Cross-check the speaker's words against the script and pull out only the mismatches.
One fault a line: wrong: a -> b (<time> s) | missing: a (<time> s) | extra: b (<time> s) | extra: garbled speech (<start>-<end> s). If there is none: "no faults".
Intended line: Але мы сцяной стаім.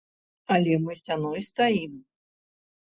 no faults